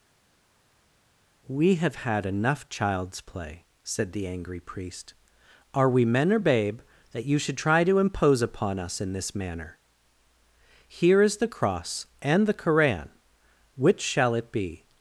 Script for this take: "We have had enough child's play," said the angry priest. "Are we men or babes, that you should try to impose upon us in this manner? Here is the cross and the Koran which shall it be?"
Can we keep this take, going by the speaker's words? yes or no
no